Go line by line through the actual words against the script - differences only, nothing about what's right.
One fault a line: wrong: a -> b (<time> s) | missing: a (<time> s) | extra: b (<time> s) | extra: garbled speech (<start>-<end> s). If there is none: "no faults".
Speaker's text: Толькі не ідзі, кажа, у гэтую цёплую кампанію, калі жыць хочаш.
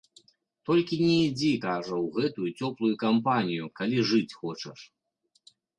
no faults